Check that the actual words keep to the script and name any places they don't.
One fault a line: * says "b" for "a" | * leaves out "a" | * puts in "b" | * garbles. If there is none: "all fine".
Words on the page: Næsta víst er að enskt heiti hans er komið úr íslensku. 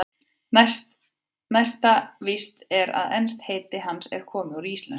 all fine